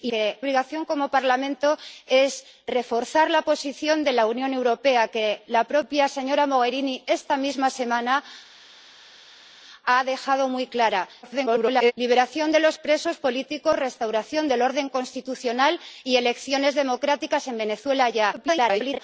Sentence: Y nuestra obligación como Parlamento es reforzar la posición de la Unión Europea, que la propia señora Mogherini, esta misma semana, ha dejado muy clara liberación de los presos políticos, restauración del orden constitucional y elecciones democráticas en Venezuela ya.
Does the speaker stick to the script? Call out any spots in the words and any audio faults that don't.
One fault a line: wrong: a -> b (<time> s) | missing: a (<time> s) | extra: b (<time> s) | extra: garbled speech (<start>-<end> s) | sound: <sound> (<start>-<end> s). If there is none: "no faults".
wrong: nuestra -> que (0.1 s)
extra: garbled speech (11.2-11.9 s)
extra: garbled speech (18.3-19.0 s)